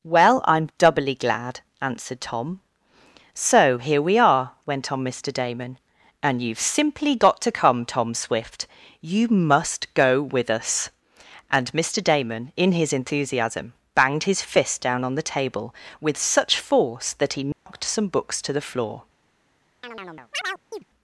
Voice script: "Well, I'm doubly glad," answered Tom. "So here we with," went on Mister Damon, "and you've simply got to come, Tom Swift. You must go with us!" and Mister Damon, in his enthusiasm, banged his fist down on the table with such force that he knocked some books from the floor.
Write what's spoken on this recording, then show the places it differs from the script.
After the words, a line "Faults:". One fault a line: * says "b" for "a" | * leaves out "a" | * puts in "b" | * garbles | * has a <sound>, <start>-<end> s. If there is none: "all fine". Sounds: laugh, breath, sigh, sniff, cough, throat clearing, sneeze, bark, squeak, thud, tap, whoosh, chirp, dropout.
"Well, I'm doubly glad," answered Tom. "So here we are," went on Mister Damon, "and you've simply got to come, Tom Swift. You must go with us!" and Mister Damon, in his enthusiasm, banged his fist down on the table with such force that he knocked some books to the floor.
Faults:
* says "are" for "with"
* has a dropout, 17.5-17.7 s
* says "to" for "from"
* has a chirp, 19.8-20.8 s